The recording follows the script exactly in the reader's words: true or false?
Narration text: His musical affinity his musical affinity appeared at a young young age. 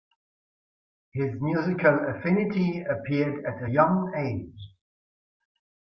false